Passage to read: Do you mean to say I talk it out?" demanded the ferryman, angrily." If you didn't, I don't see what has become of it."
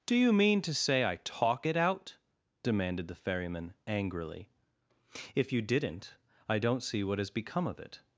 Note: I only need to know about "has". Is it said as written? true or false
true